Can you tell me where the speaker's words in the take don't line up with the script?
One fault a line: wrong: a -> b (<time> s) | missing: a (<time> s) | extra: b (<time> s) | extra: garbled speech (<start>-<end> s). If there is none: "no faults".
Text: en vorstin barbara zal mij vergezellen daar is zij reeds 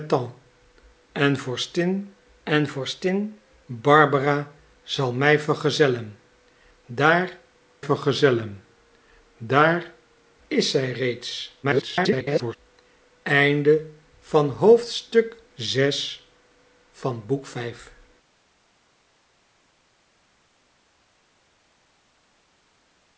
extra: en vorstin (2.4 s)
extra: vergezellen daar (7.8 s)
extra: garbled speech (11.6-12.6 s)